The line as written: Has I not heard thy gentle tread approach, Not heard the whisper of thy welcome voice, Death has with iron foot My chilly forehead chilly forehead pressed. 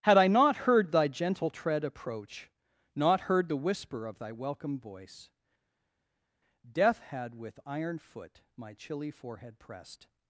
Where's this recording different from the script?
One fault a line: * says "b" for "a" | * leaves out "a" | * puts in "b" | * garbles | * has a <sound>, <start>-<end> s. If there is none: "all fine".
* says "Had" for "Has"
* says "had" for "has"
* leaves out "chilly forehead"